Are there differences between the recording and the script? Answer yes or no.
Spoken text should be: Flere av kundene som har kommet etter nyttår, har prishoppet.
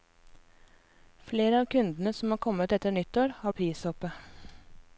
no